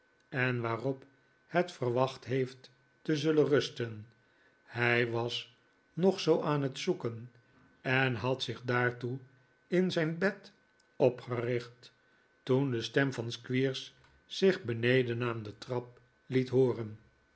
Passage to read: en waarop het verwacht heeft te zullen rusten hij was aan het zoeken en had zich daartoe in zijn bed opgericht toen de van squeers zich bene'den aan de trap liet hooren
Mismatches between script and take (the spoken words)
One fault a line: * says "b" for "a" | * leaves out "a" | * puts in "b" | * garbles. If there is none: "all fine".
* puts in "nog zoo"
* puts in "stem"